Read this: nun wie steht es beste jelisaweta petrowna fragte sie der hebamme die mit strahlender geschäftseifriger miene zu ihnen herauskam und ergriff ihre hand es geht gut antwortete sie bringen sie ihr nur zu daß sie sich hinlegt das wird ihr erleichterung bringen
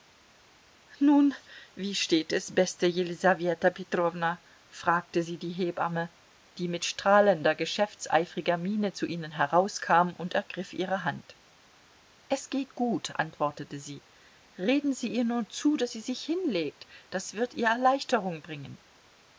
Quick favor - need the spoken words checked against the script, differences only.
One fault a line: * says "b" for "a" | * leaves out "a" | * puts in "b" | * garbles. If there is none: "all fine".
* says "die" for "der"
* says "reden" for "bringen"